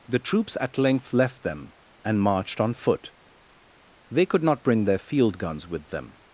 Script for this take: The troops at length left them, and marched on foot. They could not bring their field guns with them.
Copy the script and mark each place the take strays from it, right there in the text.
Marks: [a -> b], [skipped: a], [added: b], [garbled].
The troops at length left them, and marched on foot. They could not bring their field guns with them.